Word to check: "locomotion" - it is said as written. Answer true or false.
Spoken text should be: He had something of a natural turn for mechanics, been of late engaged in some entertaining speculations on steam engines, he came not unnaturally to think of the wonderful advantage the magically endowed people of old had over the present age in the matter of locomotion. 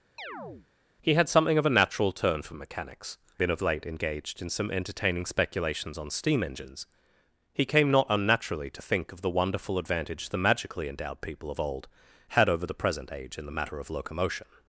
true